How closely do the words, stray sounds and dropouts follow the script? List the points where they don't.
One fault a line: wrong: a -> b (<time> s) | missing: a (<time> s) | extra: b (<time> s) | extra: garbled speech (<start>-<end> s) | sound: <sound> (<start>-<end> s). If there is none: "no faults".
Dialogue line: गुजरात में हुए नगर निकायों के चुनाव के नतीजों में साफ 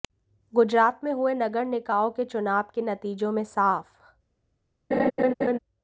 sound: laugh (4.9-5.6 s)